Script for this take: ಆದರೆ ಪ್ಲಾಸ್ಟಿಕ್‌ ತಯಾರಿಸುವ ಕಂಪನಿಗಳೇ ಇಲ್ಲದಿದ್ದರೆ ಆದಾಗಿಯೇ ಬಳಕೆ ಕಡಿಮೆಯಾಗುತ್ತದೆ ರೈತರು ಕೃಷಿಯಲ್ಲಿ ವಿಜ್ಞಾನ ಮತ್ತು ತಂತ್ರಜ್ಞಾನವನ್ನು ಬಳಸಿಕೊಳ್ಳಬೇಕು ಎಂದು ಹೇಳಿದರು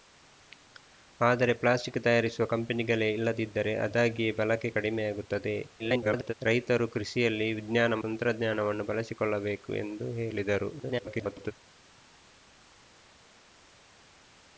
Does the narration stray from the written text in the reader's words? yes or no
yes